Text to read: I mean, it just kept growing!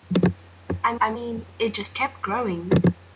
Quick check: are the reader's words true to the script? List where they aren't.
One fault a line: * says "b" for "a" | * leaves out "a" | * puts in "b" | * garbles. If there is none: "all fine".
* puts in "I"